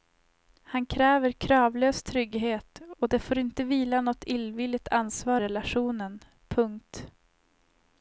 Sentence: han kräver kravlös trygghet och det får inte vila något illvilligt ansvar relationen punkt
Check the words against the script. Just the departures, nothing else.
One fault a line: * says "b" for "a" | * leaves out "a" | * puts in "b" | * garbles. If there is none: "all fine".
all fine